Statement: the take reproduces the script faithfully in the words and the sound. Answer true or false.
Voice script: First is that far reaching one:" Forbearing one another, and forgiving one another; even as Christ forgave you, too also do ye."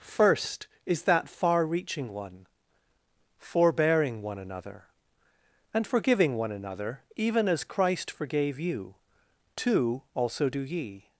true